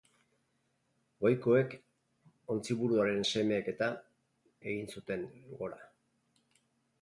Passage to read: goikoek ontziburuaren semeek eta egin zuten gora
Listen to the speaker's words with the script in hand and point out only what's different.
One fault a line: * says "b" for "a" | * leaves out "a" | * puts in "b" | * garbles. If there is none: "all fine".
all fine